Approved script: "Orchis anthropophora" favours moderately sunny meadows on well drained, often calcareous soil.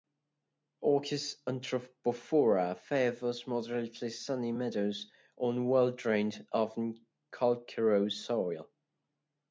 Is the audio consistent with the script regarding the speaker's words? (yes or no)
yes